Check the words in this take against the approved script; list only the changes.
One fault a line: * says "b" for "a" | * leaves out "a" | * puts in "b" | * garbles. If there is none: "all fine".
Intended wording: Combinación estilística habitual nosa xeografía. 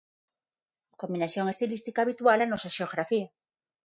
* puts in "na"